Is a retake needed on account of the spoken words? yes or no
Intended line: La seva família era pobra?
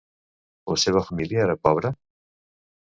no